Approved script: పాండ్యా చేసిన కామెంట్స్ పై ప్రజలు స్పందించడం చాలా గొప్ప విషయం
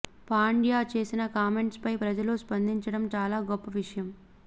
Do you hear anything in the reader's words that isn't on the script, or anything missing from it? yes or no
no